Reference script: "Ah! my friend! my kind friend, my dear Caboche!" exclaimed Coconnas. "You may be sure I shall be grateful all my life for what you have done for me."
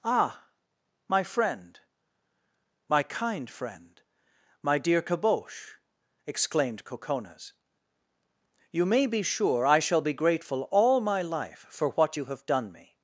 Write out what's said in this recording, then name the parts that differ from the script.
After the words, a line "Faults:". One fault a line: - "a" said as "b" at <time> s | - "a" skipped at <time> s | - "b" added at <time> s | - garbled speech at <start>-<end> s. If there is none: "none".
"Ah! my friend! my kind friend, my dear Caboche!" exclaimed Coconnas. "You may be sure I shall be grateful all my life for what you have done me."
Faults:
- "for" skipped at 12.7 s